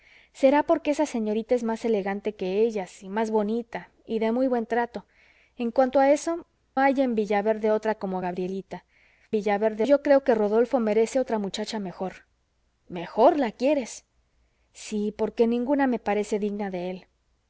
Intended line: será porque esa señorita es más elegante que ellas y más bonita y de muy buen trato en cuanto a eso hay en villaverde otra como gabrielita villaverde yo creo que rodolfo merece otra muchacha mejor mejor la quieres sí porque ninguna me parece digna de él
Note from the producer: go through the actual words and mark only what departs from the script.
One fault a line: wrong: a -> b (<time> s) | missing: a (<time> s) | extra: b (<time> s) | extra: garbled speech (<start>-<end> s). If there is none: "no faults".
no faults